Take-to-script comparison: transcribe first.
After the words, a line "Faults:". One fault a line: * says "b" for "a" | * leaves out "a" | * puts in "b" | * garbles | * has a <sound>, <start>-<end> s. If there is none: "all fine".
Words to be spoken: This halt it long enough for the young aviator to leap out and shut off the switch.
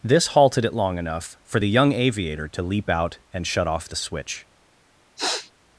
This halted it long enough for the young aviator to leap out and shut off the switch.
Faults:
* says "halted" for "halt"
* has a sniff, 5.2-5.5 s